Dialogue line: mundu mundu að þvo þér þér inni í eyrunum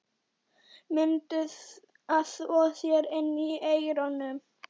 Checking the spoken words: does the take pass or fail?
fail